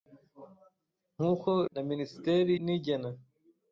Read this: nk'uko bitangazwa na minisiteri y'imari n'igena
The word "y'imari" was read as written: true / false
false